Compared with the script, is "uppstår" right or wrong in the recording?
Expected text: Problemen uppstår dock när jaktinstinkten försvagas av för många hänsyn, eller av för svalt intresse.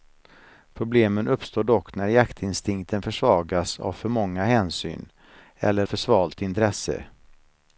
right